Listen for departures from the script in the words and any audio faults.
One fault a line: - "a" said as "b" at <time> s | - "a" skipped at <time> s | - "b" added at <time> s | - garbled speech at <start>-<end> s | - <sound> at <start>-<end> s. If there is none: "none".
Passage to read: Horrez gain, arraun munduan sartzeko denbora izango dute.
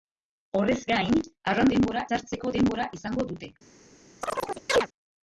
- "munduan" said as "denbora" at 1.7 s
- chirp at 4.2-4.9 s